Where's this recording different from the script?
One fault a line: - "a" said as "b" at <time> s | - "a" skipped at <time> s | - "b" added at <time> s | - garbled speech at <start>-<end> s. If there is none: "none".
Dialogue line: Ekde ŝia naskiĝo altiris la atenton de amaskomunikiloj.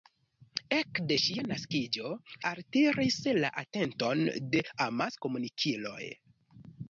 none